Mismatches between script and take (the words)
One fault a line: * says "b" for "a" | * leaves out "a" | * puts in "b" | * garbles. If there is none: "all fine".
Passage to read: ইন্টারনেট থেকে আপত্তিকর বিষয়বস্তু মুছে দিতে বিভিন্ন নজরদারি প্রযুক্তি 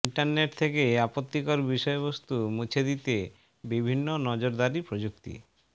all fine